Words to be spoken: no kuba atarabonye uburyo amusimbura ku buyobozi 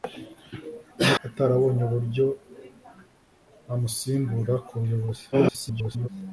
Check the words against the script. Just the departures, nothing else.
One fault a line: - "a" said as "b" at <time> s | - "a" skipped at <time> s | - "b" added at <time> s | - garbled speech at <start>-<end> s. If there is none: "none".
- "kuba" skipped at 1.1 s
- garbled speech at 5.3-6.1 s